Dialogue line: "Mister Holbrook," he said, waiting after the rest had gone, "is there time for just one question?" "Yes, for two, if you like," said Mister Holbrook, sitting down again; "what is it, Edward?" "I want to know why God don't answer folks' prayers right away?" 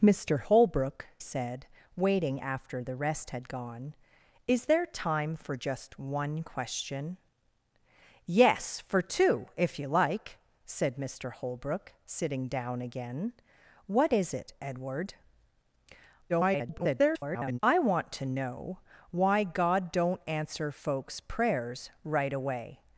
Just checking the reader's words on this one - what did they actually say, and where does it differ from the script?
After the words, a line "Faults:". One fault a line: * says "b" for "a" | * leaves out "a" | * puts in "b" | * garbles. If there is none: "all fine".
"Mister Holbrook," said, waiting after the rest had gone, "is there time for just one question?" "Yes, for two, if you like," said Mister Holbrook, sitting down again; "what is it, Edward?" [garbled] "I want to know why God don't answer folks' prayers right away?"
Faults:
* leaves out "he"
* garbles